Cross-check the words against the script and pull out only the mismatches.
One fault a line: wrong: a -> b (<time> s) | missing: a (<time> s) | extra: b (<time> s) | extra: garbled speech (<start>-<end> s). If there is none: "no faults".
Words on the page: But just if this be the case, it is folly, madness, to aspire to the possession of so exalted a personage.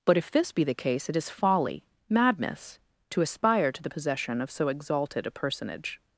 missing: just (0.2 s)